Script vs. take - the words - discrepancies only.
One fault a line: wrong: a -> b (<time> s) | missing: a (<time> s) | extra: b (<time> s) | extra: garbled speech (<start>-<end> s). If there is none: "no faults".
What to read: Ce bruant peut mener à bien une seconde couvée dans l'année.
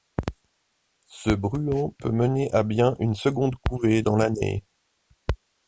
no faults